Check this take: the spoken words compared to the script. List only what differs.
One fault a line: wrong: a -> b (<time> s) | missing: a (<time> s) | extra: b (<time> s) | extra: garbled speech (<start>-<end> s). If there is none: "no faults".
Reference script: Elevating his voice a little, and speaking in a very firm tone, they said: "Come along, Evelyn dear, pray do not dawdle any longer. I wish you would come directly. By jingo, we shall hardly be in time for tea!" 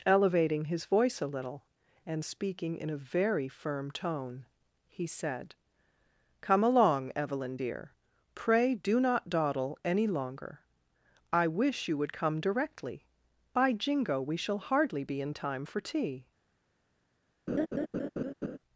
wrong: they -> he (4.9 s)